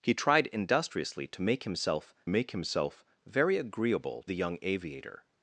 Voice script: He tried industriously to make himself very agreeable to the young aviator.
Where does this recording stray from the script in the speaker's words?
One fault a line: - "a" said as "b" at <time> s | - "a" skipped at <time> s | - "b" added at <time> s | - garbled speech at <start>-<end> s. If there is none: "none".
- "make himself" added at 2.3 s
- "to" skipped at 4.3 s